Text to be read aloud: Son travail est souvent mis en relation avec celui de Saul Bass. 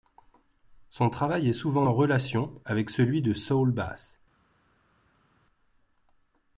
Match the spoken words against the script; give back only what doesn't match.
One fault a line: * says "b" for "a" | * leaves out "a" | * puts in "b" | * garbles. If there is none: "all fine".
* leaves out "mis"